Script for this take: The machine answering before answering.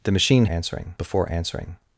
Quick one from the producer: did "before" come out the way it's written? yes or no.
yes